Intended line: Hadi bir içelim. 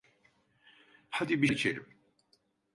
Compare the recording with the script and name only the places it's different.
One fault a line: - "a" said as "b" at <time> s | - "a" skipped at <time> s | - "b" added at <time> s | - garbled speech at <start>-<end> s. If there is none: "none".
none